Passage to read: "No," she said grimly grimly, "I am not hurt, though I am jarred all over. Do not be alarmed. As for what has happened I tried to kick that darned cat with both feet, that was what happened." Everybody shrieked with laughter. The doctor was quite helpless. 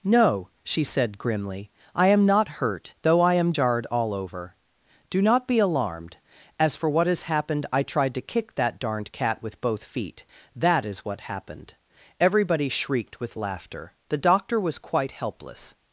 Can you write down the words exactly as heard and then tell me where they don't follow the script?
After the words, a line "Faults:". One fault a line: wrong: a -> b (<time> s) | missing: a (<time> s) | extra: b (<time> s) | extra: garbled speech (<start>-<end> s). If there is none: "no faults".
"No," she said grimly, "I am not hurt, though I am jarred all over. Do not be alarmed. As for what has happened I tried to kick that darned cat with both feet, that is what happened." Everybody shrieked with laughter. The doctor was quite helpless.
Faults:
missing: grimly (1.7 s)
wrong: was -> is (10.8 s)